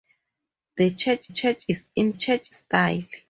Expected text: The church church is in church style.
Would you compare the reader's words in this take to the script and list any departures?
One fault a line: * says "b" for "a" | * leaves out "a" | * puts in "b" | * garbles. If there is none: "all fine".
all fine